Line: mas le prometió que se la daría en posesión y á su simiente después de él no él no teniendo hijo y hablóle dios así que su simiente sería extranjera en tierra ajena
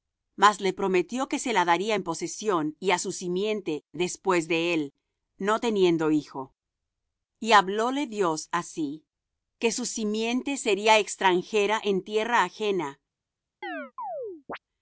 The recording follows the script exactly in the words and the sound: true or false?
false